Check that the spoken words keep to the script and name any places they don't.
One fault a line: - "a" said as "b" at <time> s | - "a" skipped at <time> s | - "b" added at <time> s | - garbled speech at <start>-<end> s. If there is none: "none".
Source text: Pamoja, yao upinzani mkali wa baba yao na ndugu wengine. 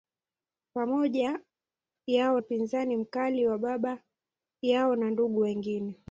none